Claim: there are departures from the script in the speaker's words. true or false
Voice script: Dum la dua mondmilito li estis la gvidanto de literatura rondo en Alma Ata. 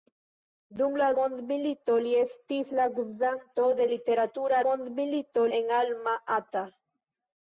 true